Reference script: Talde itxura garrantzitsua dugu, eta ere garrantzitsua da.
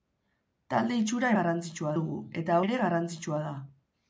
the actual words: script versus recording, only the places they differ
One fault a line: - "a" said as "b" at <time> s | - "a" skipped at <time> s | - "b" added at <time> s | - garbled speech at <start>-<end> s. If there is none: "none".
none